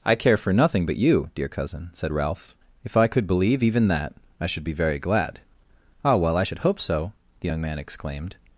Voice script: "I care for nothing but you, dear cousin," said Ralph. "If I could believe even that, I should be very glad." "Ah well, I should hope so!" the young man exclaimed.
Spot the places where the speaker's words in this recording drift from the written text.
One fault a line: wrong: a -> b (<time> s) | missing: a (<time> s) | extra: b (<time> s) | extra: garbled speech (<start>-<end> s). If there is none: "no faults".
no faults